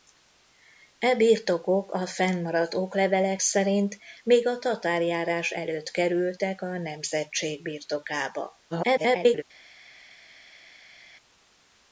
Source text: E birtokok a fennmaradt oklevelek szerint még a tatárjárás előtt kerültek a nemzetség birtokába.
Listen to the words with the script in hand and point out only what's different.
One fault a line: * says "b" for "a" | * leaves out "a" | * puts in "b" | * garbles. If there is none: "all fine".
* garbles